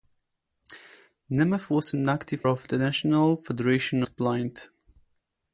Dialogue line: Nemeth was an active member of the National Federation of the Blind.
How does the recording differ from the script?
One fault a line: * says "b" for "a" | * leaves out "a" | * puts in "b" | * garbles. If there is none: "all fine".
* leaves out "member"
* leaves out "of"